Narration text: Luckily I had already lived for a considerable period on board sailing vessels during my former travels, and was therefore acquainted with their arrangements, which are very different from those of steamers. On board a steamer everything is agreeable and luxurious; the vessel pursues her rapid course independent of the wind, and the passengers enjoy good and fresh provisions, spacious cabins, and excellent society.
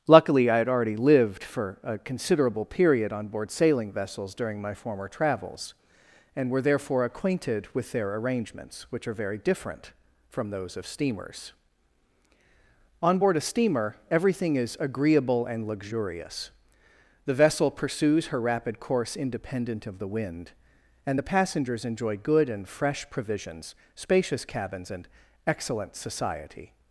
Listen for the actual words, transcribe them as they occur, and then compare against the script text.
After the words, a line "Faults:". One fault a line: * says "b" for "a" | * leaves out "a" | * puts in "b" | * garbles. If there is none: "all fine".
Luckily I had already lived for a considerable period on board sailing vessels during my former travels, and were therefore acquainted with their arrangements, which are very different from those of steamers. On board a steamer everything is agreeable and luxurious; the vessel pursues her rapid course independent of the wind, and the passengers enjoy good and fresh provisions, spacious cabins, and excellent society.
Faults:
* says "were" for "was"